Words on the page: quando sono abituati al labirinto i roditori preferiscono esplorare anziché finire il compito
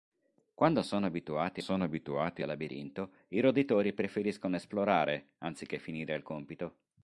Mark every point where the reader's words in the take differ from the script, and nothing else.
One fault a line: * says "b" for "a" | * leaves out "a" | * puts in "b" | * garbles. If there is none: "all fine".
* puts in "sono abituati"